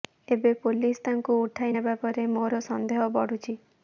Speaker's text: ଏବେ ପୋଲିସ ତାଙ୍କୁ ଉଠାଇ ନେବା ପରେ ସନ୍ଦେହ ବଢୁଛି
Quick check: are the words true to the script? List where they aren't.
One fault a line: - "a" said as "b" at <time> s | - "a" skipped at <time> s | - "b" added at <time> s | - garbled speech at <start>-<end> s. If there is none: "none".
- "ମୋର" added at 2.3 s